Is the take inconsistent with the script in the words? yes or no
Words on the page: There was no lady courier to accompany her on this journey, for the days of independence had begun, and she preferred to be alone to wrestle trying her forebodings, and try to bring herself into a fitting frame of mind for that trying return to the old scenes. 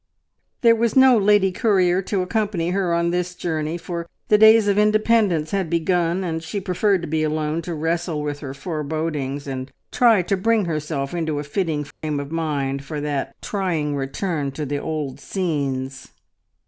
yes